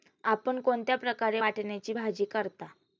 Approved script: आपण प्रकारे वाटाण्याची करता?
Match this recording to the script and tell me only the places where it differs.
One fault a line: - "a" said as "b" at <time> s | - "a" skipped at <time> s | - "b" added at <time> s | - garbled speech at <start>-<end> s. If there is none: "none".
- "कोणत्या" added at 0.6 s
- "भाजी" added at 1.9 s